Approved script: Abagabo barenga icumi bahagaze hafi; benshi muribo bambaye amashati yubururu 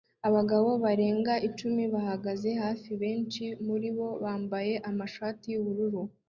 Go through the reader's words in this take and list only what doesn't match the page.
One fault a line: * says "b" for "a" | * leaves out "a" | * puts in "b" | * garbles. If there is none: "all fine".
all fine